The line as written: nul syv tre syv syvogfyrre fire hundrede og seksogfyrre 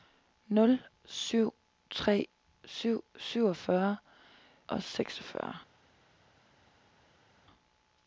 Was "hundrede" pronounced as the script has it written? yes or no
no